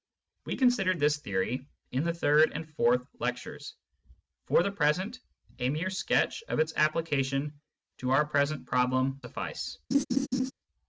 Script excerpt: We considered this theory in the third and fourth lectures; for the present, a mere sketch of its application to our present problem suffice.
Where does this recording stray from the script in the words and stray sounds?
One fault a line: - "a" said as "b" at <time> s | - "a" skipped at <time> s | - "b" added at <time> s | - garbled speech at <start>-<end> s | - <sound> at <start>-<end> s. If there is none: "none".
- laugh at 9.9-10.5 s